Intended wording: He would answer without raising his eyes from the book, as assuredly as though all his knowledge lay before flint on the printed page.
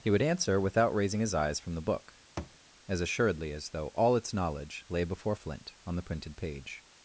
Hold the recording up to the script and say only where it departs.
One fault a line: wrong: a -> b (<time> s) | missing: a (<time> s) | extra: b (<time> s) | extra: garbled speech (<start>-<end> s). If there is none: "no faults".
wrong: his -> its (4.1 s)